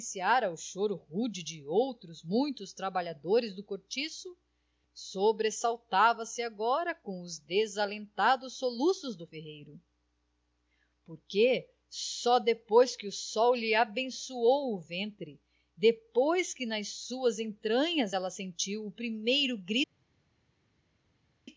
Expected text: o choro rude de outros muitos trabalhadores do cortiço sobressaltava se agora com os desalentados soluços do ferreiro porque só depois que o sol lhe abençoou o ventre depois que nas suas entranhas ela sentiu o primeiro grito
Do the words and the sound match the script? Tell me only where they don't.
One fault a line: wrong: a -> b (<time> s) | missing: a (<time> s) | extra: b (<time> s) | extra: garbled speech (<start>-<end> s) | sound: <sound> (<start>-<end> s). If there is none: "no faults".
no faults